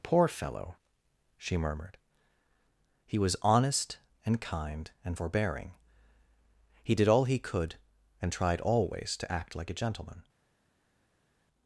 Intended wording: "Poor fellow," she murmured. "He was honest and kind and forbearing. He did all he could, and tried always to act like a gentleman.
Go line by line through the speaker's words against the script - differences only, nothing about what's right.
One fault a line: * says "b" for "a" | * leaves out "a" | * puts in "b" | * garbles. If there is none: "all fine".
all fine